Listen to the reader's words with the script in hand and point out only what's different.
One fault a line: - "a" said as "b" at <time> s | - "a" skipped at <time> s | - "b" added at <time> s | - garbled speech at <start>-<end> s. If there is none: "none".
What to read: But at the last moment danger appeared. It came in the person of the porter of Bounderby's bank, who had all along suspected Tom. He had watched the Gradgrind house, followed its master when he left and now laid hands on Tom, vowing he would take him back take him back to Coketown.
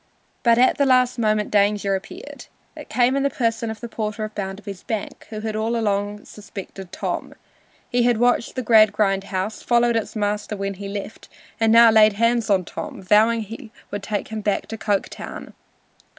- "take him back" skipped at 14.7 s